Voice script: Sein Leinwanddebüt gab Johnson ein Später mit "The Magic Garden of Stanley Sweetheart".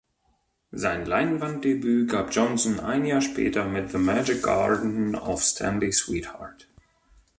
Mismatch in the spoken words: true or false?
true